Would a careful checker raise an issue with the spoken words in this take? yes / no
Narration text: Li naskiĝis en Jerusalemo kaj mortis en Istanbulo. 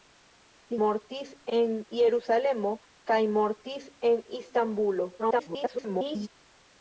yes